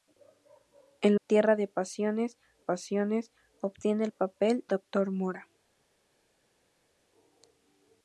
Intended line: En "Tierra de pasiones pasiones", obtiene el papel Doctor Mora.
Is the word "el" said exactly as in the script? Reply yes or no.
yes